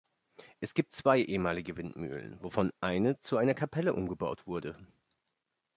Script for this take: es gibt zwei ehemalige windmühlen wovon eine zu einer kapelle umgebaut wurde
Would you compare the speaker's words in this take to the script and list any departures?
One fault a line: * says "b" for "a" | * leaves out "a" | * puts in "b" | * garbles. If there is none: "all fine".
all fine